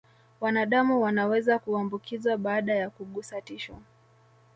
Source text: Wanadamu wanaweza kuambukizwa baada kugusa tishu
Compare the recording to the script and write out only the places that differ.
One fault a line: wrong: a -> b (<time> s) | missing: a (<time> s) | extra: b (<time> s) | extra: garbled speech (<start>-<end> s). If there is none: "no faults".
extra: ya (2.8 s)